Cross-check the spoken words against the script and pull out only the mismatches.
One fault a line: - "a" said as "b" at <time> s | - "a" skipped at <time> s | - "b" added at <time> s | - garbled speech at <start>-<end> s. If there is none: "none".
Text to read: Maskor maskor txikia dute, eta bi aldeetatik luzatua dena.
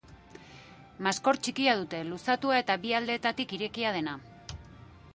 - "maskor" skipped at 1.4 s
- "luzatua" added at 2.1 s
- "luzatua" said as "irekia" at 3.6 s